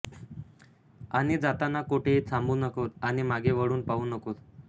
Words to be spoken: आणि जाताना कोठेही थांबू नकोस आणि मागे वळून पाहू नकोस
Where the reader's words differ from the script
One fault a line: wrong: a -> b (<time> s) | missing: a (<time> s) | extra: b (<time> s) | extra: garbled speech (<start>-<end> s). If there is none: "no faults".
no faults